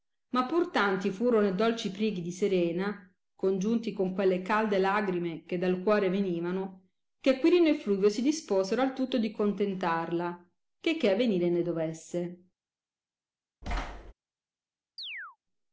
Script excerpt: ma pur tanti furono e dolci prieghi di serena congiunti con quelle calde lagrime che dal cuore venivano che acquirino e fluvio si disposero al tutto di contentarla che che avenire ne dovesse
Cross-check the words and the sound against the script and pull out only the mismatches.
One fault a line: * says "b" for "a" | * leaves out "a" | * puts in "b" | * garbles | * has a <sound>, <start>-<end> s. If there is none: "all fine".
* has a thud, 13.6-14.1 s
* has a chirp, 15.0-15.4 s